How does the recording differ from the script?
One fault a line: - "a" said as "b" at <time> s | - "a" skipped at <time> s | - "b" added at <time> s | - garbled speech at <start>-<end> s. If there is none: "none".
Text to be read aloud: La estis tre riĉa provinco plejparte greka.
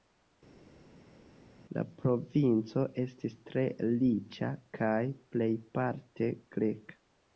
- "provinco" added at 2.0 s
- "provinco" said as "kaj" at 4.8 s